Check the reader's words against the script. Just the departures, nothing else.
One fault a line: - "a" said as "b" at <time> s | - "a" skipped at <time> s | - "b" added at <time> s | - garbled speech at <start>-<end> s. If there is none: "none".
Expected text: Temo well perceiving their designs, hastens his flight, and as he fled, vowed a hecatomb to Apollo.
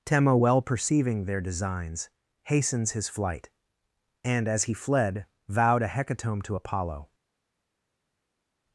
none